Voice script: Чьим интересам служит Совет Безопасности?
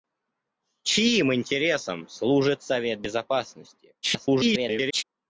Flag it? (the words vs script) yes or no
yes